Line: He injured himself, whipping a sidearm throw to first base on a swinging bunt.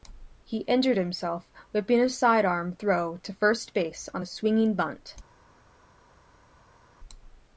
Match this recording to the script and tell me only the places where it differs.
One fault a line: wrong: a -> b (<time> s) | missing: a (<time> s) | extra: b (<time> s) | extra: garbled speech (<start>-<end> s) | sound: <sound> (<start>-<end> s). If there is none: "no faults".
no faults